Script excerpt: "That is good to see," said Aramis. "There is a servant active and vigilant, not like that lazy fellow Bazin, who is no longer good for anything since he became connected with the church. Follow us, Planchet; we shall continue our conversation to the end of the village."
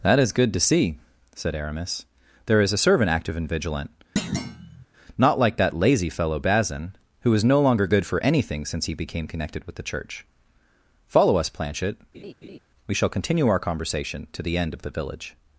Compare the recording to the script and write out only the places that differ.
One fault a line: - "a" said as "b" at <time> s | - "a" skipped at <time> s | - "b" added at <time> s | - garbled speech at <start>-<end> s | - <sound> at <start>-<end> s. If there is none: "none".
- thud at 4.2-4.9 s
- laugh at 12.1-12.6 s